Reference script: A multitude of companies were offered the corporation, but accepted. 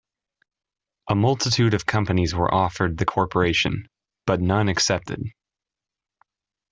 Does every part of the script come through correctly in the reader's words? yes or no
no